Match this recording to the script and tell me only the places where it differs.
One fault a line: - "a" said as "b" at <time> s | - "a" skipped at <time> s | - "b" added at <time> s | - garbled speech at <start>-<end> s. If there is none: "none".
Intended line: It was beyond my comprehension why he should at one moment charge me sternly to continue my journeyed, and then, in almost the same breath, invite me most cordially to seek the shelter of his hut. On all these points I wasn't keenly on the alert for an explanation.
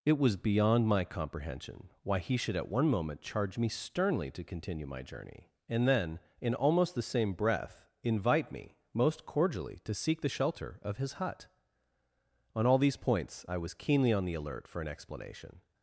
- "journeyed" said as "journey" at 5.0 s
- "wasn't" said as "was" at 13.6 s